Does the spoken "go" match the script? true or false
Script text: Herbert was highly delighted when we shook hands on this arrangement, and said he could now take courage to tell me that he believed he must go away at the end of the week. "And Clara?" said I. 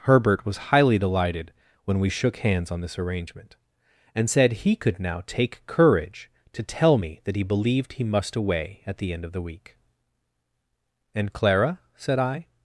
false